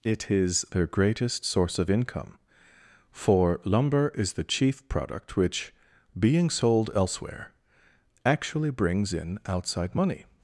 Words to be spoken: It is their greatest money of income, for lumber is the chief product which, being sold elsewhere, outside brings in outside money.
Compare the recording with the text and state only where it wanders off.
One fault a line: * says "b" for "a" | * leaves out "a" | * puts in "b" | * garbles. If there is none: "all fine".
* says "source" for "money"
* says "actually" for "outside"